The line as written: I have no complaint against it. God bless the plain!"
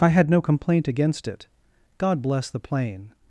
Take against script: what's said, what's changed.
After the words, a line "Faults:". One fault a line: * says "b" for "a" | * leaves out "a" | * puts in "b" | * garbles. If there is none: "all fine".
I had no complaint against it. God bless the plain!"
Faults:
* says "had" for "have"